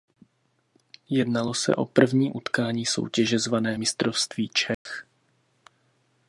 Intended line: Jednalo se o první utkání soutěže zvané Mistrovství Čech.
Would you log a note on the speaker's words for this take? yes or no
no